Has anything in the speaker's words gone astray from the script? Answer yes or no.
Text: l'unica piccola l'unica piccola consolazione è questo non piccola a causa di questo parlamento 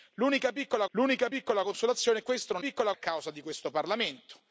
no